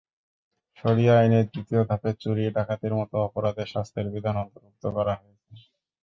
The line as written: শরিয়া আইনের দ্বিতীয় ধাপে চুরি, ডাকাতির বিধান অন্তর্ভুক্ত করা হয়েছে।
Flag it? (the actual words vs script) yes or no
yes